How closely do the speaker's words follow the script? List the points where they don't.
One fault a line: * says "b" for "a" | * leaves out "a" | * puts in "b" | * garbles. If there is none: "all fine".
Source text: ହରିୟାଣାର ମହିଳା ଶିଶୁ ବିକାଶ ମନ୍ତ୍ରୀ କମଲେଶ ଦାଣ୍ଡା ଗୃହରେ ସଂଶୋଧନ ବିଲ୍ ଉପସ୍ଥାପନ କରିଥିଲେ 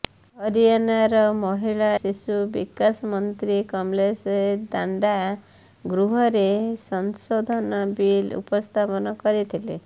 all fine